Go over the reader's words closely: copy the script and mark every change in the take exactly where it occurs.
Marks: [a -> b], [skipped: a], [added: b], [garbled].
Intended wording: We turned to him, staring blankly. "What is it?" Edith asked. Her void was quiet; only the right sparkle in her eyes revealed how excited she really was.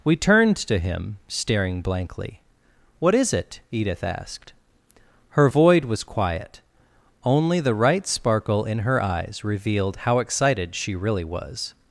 We turned to him, staring blankly. "What is it?" Edith asked. Her void was quiet; only the right sparkle in her eyes revealed how excited she really was.